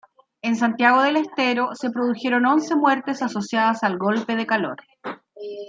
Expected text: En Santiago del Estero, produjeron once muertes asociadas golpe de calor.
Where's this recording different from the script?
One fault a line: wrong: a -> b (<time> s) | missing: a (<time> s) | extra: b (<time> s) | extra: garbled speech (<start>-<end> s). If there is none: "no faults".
extra: se (1.7 s)
extra: al (3.8 s)